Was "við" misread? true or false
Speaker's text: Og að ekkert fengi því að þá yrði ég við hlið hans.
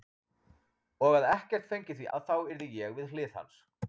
false